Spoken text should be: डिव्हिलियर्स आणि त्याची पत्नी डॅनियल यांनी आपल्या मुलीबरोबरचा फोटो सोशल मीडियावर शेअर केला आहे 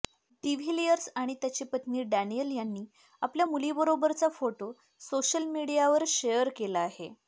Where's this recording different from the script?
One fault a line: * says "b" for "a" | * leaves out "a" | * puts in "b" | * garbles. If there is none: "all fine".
all fine